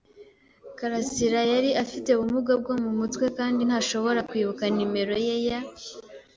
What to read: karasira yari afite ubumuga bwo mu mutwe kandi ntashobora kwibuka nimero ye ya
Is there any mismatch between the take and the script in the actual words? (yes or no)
no